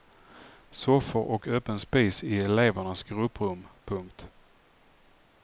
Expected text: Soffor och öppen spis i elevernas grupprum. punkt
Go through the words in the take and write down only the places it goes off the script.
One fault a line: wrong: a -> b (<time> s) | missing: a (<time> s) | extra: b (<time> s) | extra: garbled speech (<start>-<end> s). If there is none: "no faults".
no faults